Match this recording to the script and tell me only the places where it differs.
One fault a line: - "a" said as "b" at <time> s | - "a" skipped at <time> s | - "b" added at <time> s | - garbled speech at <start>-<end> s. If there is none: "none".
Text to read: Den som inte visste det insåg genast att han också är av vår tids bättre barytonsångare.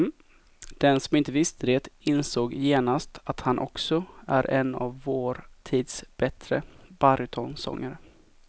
- "en" added at 4.5 s